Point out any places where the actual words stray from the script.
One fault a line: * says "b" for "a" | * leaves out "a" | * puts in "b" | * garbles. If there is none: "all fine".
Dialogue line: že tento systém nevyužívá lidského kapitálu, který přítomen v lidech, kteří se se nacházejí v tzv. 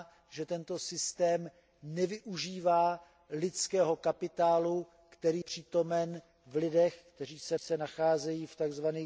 all fine